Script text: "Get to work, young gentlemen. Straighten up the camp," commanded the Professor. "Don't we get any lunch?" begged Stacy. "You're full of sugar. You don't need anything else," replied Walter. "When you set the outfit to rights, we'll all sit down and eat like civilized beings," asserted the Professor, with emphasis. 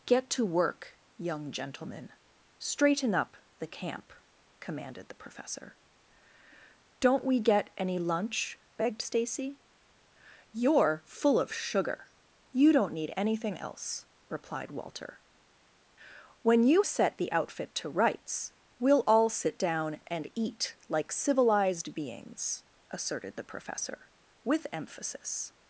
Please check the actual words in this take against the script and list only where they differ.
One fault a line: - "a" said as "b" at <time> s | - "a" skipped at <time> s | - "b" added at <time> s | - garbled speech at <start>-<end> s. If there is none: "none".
none